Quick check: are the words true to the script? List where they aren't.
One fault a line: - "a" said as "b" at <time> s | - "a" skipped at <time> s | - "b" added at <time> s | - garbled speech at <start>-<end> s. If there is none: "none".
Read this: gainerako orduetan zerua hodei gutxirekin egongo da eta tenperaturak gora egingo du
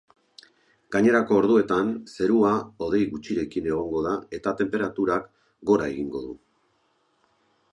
none